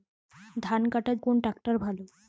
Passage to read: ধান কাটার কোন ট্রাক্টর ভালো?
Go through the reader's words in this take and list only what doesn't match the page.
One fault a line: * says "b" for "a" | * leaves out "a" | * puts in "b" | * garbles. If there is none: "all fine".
all fine